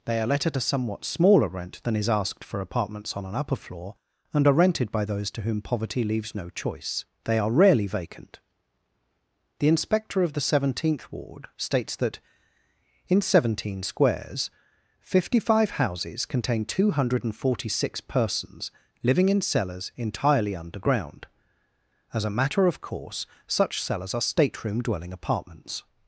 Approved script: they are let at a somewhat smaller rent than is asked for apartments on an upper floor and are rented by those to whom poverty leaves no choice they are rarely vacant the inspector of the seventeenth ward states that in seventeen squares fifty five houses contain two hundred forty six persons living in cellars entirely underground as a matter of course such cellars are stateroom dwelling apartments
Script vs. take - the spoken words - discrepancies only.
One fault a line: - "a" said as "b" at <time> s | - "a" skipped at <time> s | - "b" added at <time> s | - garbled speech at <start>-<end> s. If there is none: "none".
none